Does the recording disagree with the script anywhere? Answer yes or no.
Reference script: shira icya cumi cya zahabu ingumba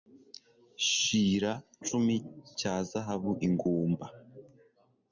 yes